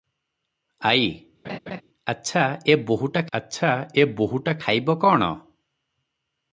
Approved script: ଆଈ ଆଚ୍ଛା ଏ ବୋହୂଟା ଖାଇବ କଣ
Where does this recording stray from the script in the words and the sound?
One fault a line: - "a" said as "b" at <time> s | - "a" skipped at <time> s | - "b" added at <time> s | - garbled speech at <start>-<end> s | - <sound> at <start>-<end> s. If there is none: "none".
- laugh at 1.4-1.8 s
- "ଆଚ୍ଛା ଏ ବୋହୂଟା" added at 3.3 s